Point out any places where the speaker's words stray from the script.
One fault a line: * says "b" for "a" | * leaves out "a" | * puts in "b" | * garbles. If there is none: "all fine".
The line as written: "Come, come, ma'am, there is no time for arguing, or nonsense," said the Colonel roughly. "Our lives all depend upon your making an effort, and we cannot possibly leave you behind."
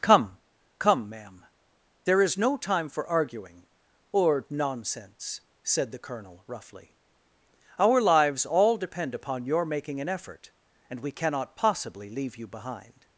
all fine